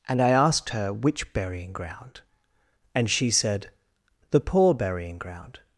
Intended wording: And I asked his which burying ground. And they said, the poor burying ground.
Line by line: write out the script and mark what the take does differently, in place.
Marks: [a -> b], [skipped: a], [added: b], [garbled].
And I asked [his -> her] which burying ground. And [they -> she] said, the poor burying ground.